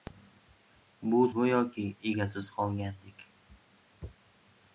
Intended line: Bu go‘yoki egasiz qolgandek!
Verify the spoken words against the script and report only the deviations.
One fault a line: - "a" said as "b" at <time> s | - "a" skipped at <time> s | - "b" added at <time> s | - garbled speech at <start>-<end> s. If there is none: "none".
none